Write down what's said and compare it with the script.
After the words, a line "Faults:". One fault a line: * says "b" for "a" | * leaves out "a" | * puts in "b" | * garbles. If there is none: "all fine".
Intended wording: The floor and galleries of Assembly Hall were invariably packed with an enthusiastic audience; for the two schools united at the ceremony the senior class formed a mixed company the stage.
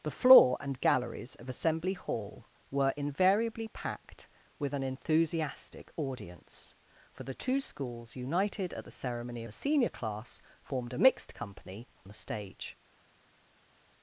The floor and galleries of Assembly Hall were invariably packed with an enthusiastic audience; for the two schools united at the ceremony the senior class formed a mixed company the stage.
Faults:
all fine